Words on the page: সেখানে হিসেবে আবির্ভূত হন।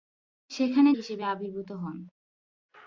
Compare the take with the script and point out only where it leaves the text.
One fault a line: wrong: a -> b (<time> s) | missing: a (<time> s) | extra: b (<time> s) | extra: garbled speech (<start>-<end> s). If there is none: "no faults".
no faults